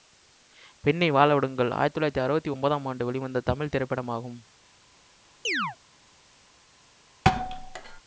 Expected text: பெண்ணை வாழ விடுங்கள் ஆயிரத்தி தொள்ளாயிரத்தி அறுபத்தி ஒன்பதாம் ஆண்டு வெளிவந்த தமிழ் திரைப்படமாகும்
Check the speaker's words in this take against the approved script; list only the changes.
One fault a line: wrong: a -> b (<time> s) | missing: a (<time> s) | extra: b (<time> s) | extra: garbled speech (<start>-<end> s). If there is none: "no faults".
no faults